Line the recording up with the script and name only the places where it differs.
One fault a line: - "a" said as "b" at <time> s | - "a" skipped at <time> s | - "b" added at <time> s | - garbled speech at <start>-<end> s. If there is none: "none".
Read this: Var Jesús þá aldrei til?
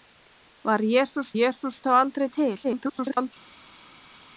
- "Jesús" added at 1.4 s
- garbled speech at 2.6-3.3 s